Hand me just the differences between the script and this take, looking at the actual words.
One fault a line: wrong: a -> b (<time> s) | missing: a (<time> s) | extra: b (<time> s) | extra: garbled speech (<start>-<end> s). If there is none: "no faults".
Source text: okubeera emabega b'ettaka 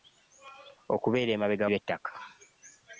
no faults